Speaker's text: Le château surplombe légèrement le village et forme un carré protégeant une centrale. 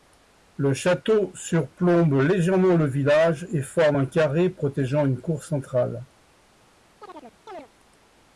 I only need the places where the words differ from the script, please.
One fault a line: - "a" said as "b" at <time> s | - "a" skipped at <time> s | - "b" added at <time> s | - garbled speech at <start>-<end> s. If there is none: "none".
- "cour" added at 5.2 s